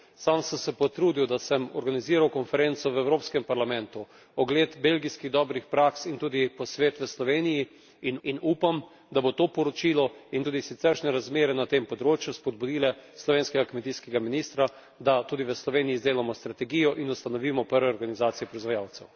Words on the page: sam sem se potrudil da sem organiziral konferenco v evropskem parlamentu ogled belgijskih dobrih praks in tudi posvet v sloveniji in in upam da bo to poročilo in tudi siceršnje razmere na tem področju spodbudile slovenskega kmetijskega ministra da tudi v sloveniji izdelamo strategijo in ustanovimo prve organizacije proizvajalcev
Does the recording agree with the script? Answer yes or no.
yes